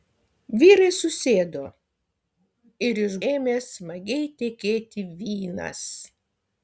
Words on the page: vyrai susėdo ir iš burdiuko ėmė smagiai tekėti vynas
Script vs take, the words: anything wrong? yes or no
yes